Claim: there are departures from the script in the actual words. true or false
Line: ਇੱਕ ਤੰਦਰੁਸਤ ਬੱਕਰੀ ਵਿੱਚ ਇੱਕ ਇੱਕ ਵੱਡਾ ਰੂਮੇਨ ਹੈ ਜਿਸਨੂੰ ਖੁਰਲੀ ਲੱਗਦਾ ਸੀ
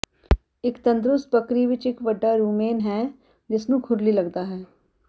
true